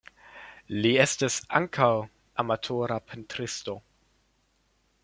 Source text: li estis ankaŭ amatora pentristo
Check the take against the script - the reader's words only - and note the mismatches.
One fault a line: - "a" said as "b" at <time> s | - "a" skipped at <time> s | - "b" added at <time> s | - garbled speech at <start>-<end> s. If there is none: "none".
none